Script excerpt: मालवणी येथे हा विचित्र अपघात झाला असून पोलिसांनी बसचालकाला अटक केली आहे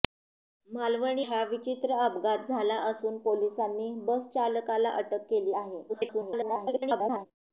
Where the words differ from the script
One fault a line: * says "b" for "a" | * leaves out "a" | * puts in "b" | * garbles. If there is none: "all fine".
* leaves out "येथे"
* garbles